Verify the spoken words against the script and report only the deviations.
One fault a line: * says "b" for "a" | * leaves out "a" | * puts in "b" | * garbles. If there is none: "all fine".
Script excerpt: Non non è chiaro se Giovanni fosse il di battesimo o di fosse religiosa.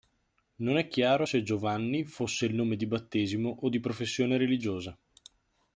* leaves out "non"
* puts in "nome"
* says "professione" for "fosse"